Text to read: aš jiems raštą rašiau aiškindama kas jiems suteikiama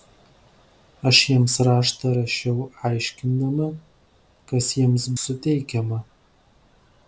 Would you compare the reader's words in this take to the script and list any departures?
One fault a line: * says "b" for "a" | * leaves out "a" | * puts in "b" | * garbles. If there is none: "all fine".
all fine